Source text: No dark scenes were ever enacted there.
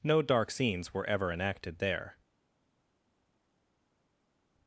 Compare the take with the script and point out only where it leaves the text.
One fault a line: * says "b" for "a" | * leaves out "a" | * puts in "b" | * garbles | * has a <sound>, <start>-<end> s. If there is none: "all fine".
all fine